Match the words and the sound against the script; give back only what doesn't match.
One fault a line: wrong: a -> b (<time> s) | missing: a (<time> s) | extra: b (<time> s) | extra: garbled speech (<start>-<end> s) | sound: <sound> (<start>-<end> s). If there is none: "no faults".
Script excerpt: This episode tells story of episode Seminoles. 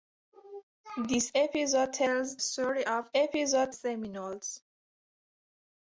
no faults